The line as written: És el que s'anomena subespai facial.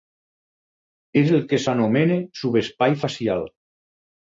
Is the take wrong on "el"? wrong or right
right